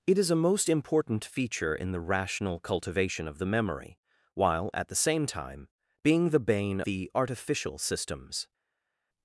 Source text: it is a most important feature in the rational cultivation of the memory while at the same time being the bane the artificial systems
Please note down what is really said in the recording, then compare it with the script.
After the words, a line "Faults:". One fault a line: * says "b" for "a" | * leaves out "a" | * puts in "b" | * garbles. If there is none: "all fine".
it is a most important feature in the rational cultivation of the memory while at the same time being the bane the artificial systems
Faults:
all fine